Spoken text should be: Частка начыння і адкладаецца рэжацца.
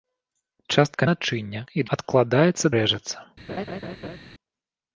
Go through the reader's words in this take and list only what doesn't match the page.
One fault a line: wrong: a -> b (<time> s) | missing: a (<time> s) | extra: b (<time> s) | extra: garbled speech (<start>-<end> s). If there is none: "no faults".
no faults